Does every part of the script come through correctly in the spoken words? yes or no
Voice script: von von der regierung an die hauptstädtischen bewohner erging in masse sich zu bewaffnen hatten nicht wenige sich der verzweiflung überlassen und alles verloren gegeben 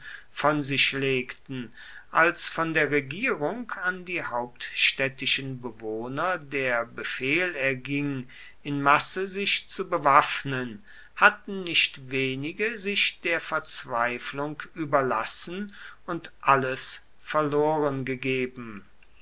no